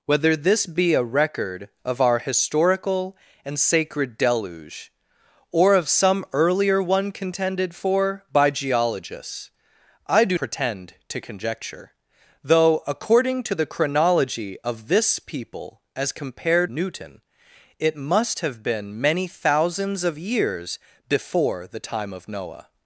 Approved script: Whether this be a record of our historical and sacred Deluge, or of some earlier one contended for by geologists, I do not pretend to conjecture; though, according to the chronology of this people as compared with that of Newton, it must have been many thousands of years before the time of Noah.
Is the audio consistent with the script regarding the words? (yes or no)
no